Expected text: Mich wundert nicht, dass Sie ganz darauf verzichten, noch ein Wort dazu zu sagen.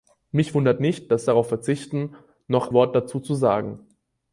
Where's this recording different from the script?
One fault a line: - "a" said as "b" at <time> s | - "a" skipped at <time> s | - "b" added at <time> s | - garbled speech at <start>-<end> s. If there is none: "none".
- "Sie ganz" skipped at 1.3 s
- "ein" skipped at 2.7 s